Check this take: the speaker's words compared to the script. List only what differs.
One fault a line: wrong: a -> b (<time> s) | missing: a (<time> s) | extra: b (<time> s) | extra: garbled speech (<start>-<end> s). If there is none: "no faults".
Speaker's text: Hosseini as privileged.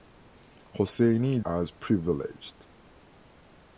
no faults